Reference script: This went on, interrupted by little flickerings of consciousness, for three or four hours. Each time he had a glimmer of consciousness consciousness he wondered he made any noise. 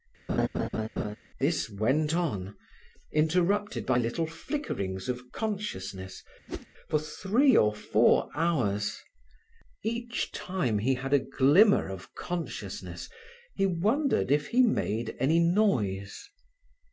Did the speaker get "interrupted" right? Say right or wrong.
right